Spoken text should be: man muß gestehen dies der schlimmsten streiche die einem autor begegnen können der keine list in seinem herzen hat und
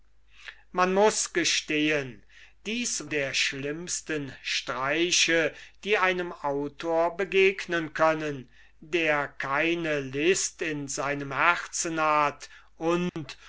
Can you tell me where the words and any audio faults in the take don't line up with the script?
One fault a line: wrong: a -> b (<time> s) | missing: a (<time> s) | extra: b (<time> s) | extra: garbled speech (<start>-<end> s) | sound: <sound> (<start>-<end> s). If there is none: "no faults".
sound: dropout (13.1-13.2 s)